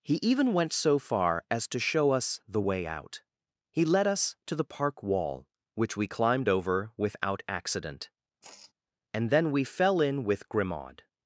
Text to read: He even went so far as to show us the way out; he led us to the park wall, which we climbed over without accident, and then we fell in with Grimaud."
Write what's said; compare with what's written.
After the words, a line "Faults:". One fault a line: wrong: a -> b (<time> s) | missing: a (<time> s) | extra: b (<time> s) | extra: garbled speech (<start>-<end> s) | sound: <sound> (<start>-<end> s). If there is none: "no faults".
He even went so far as to show us the way out; he led us to the park wall, which we climbed over without accident, and then we fell in with Grimaud."
Faults:
sound: sigh (8.4-8.7 s)